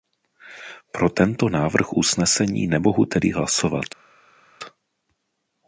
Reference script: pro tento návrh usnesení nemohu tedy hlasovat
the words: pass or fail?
pass